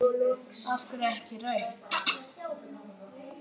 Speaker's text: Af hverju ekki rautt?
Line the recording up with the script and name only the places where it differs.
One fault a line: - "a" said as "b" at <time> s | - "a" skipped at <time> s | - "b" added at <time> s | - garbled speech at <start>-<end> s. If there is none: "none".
none